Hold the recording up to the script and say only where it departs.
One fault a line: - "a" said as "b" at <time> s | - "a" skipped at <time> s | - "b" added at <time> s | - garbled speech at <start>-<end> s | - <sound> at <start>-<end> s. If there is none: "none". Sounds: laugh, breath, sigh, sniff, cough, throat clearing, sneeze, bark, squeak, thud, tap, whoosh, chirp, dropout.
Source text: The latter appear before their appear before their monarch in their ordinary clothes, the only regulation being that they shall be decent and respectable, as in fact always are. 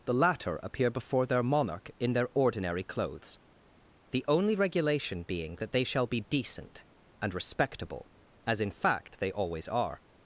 - "appear before their" skipped at 1.4 s
- "they" added at 9.2 s